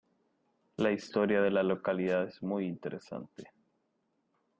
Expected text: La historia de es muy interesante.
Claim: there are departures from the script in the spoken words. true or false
true